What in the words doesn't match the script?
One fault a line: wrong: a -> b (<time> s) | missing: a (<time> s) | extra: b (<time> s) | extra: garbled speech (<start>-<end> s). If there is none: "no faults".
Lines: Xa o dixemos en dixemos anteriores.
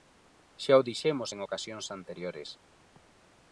wrong: dixemos -> ocasións (1.5 s)